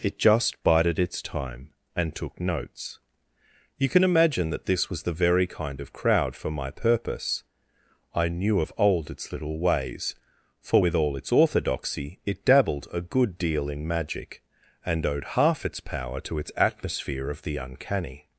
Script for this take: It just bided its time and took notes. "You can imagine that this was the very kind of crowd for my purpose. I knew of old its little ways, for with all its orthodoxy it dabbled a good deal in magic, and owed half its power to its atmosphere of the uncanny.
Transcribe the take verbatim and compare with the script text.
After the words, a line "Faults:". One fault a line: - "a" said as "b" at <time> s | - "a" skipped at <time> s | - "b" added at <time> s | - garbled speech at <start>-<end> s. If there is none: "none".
It just bided its time and took notes. "You can imagine that this was the very kind of crowd for my purpose. I knew of old its little ways, for with all its orthodoxy it dabbled a good deal in magic, and owed half its power to its atmosphere of the uncanny.
Faults:
none